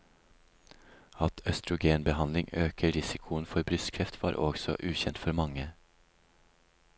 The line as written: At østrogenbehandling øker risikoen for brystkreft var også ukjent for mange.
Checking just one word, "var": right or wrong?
right